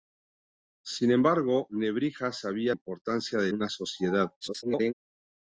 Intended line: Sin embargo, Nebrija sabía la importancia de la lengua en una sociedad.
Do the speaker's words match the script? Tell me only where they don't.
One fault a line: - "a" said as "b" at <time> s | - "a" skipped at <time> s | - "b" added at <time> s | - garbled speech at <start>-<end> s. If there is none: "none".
- "la" skipped at 2.7 s
- "la lengua en" skipped at 3.5 s
- garbled speech at 4.4-4.9 s